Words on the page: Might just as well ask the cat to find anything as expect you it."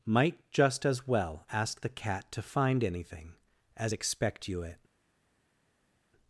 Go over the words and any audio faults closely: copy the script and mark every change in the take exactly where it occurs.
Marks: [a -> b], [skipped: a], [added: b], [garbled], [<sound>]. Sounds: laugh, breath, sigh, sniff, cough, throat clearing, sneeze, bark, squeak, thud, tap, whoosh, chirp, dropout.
Might just as well ask the cat to find anything as expect you it."